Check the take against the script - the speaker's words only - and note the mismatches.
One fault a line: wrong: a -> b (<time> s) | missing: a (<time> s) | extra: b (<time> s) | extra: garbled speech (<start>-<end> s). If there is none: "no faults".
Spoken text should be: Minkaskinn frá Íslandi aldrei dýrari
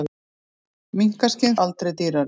missing: frá Íslandi (1.6 s)